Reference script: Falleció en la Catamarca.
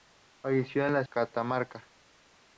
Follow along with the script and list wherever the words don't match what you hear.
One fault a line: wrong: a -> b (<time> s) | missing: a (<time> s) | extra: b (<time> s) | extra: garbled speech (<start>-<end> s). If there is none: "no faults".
no faults